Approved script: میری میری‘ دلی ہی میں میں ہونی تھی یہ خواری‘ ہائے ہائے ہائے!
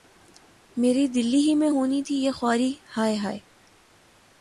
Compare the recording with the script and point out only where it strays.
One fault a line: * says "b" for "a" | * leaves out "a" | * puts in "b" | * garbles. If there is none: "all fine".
* leaves out "میری"
* leaves out "میں"
* leaves out "ہائے"